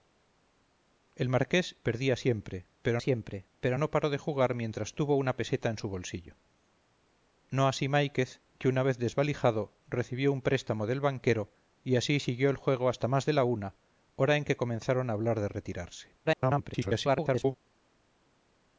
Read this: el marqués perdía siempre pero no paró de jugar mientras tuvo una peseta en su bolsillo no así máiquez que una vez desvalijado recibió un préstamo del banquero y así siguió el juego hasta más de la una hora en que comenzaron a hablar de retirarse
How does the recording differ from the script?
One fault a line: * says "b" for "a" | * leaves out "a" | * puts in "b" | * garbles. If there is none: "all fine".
* puts in "siempre pero"
* garbles